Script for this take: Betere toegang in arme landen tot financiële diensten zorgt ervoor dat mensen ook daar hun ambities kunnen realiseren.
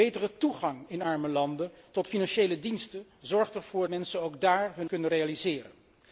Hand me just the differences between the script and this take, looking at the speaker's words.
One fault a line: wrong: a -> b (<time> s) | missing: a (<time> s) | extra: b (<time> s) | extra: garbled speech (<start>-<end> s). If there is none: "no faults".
missing: dat (3.9 s)
missing: ambities (4.9 s)